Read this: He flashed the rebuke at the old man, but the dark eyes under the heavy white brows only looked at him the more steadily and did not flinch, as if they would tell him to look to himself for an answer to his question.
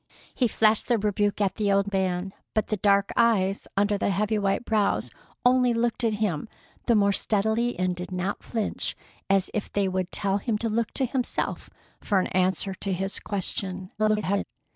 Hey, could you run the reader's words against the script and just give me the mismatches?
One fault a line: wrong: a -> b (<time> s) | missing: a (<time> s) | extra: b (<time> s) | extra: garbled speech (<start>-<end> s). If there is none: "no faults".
extra: garbled speech (14.0-14.4 s)